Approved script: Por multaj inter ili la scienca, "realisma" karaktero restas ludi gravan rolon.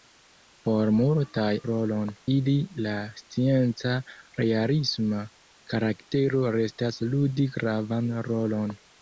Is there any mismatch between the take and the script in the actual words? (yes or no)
yes